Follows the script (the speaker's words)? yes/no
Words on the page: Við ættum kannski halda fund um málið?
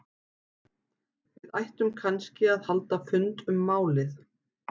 no